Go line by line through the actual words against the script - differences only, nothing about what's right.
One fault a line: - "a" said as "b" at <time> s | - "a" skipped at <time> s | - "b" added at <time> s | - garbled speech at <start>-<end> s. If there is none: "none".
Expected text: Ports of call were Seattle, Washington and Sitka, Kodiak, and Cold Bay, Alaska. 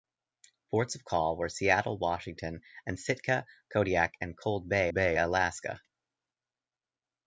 - "Bay" added at 4.9 s